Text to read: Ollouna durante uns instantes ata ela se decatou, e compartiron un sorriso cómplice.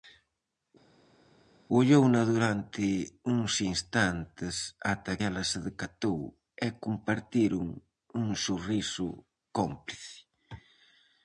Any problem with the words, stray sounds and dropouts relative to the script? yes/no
no